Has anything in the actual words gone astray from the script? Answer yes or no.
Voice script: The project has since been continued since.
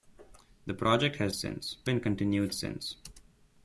no